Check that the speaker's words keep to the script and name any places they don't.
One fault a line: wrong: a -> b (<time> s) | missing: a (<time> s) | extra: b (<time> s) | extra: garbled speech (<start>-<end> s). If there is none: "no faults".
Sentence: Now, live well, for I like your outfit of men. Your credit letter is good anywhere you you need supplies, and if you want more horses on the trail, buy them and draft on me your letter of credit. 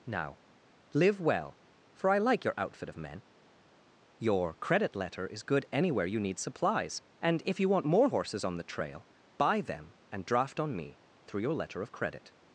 missing: you (6.2 s)
extra: through (11.3 s)